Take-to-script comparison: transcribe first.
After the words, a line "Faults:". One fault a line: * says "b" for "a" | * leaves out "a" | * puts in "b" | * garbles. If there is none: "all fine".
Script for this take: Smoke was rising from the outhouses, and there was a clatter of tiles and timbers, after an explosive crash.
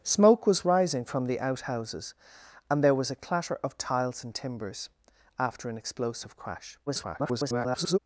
Smoke was rising from the outhouses, and there was a clatter of tiles and timbers, after an explosive crash. [garbled]
Faults:
* garbles